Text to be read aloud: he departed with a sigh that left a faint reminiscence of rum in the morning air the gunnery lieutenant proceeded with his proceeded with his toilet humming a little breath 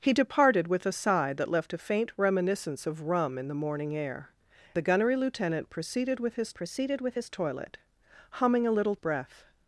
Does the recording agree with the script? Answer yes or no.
yes